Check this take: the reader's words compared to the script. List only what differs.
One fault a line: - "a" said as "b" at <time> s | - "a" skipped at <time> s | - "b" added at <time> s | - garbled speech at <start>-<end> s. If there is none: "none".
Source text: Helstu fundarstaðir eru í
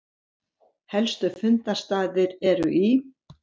none